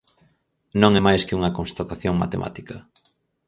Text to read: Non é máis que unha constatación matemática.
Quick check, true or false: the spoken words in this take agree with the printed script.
true